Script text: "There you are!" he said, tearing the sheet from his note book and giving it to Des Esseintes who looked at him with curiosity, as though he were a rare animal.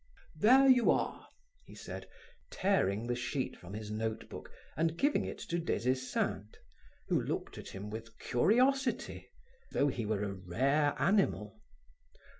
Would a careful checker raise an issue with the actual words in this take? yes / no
yes